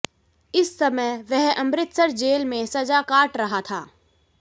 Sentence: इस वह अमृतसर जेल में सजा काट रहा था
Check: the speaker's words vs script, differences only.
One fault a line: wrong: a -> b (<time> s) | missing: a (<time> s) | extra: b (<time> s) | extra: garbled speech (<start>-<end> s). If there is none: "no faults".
extra: समय (0.8 s)